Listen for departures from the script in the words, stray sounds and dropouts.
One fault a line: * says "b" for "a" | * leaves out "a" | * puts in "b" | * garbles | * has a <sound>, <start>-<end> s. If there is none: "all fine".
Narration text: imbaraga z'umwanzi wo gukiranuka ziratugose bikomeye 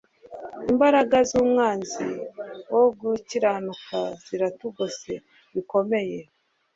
all fine